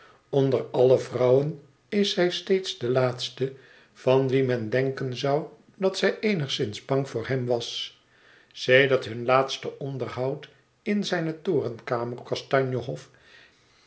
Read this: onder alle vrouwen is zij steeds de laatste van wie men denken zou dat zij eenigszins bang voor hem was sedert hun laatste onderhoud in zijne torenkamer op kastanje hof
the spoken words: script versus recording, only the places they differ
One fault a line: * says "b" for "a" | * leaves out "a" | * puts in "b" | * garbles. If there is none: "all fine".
* leaves out "op"